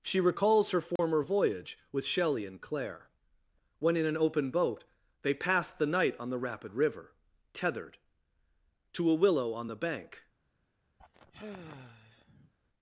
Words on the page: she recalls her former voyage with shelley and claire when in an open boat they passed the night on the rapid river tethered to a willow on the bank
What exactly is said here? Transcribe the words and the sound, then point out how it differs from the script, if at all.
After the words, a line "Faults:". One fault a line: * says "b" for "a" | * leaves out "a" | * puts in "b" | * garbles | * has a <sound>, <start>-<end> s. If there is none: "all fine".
she recalls her former voyage with shelley and claire when in an open boat they passed the night on the rapid river tethered to a willow on the bank
Faults:
* has a dropout, 1.0-1.0 s
* has a sigh, 11.0-12.5 s